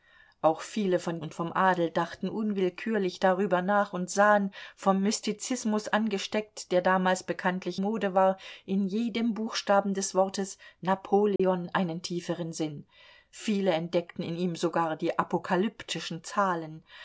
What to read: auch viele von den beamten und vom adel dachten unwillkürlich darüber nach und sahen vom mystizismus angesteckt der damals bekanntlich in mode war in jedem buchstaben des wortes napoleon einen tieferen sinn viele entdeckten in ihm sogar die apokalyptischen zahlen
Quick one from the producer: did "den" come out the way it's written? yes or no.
no